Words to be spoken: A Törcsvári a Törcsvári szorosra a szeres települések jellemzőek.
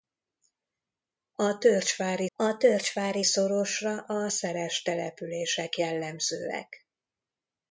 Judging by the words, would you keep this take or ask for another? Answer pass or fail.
pass